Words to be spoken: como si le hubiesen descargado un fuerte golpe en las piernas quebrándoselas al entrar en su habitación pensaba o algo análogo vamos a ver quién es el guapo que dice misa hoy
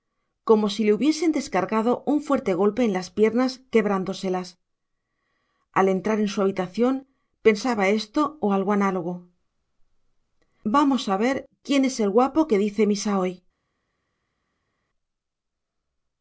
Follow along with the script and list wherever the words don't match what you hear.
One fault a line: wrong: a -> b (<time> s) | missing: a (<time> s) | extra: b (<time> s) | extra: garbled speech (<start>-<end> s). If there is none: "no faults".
extra: esto (7.9 s)